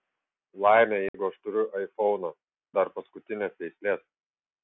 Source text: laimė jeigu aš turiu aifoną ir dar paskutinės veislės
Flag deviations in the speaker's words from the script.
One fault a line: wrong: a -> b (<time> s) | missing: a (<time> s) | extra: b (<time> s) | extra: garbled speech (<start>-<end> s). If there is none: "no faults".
missing: ir (2.3 s)